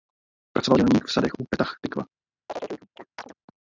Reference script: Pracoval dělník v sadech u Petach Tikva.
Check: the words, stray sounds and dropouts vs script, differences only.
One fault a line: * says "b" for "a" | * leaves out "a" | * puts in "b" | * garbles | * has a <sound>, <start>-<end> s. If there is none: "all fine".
* has a chirp, 2.5-3.3 s